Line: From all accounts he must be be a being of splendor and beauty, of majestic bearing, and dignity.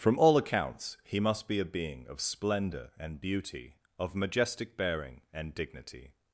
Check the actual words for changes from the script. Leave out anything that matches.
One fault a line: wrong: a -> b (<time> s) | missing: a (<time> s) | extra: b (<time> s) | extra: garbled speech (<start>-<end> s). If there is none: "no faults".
missing: be (1.6 s)